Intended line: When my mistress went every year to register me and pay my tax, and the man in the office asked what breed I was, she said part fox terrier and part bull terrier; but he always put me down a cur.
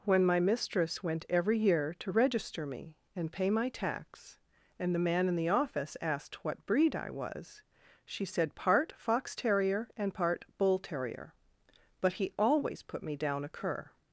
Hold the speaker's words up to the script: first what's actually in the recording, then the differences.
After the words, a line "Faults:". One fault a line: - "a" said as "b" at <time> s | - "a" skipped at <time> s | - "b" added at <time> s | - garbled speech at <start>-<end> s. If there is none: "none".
When my mistress went every year to register me and pay my tax, and the man in the office asked what breed I was, she said part fox terrier and part bull terrier; but he always put me down a cur.
Faults:
none